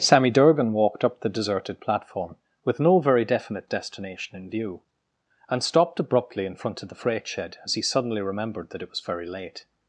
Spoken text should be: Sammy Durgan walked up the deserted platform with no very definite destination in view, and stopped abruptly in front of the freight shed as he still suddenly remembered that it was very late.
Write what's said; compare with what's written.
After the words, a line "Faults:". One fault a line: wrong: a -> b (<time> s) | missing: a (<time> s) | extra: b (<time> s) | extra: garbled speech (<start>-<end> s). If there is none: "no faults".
Sammy Durgan walked up the deserted platform with no very definite destination in view, and stopped abruptly in front of the freight shed as he suddenly remembered that it was very late.
Faults:
missing: still (7.8 s)